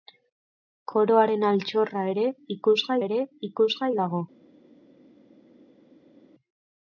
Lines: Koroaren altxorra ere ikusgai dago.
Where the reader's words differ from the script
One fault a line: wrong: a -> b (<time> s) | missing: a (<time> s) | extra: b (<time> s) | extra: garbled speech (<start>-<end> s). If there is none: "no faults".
extra: ere ikusgai (3.1 s)